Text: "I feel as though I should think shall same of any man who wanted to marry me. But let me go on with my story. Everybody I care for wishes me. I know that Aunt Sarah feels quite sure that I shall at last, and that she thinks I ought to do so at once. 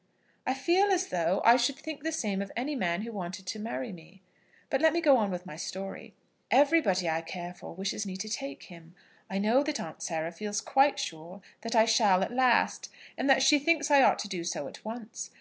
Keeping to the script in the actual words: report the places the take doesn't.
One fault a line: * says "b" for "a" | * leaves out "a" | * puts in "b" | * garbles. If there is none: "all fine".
* says "the" for "shall"
* puts in "to take him"